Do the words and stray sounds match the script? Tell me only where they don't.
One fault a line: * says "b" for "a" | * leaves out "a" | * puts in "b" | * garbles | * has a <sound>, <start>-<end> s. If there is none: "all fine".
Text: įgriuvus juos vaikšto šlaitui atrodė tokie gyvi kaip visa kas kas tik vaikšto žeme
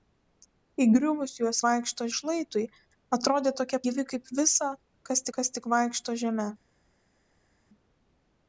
all fine